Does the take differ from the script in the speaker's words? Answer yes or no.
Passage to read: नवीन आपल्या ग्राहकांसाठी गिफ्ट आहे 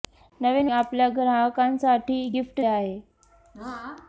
no